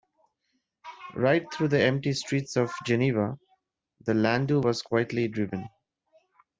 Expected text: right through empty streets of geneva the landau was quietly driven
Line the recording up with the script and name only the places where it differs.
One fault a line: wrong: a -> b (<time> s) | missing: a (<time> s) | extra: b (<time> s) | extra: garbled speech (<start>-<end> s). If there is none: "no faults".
extra: the (1.7 s)